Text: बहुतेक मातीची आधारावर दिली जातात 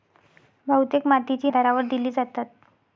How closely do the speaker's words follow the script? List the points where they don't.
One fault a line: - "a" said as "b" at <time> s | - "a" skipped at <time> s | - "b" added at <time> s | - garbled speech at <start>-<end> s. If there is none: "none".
none